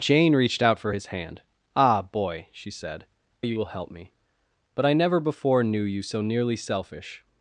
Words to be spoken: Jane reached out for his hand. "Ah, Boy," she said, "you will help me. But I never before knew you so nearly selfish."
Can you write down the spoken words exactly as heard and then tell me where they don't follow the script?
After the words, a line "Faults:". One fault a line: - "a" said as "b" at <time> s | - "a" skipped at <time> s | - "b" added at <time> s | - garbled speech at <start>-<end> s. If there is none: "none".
Jane reached out for his hand. "Ah, Boy," she said, "you will help me. But I never before knew you so nearly selfish."
Faults:
none